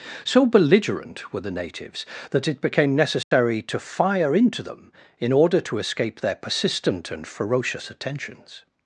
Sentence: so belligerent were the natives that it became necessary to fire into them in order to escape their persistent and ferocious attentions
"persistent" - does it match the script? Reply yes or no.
yes